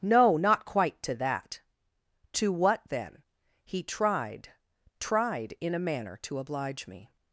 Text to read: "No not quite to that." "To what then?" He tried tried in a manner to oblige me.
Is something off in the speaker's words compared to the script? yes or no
no